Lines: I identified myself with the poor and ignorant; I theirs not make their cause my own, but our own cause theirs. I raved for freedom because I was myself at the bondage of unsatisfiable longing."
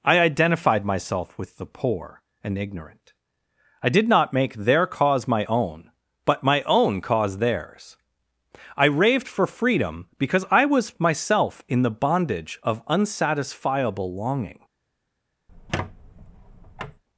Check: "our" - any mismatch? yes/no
yes